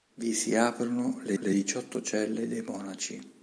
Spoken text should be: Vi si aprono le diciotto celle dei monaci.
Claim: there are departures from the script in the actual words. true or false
true